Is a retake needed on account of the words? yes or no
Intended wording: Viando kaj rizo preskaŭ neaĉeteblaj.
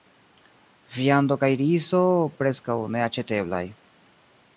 no